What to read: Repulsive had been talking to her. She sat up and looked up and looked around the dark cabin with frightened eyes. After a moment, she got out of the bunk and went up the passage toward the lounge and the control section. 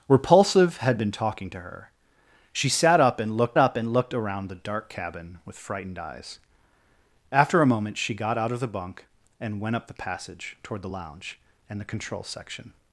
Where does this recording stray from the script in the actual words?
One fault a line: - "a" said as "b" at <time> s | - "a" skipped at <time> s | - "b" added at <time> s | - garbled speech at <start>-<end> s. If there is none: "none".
none